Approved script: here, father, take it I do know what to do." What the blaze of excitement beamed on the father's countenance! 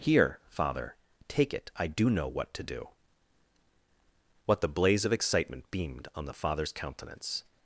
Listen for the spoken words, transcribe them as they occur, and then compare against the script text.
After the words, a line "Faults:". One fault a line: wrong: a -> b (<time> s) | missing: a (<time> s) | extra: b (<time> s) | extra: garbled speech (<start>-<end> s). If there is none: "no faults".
here, father, take it I do know what to do." What the blaze of excitement beamed on the father's countenance!
Faults:
no faults